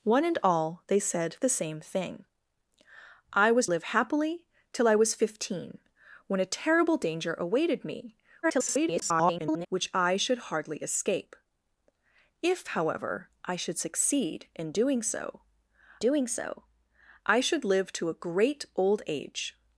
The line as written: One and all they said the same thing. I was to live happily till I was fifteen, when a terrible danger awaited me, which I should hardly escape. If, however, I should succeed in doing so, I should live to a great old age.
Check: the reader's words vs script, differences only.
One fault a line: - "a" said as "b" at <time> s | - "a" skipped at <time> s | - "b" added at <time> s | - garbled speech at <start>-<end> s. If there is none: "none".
- "to" skipped at 3.7 s
- garbled speech at 8.4-9.7 s
- "doing so" added at 16.0 s